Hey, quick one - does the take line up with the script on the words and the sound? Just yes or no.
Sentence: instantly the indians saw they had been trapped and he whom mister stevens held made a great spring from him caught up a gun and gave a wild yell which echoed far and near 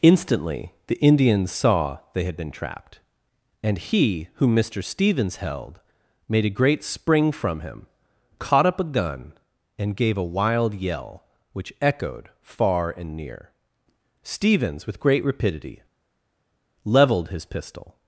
no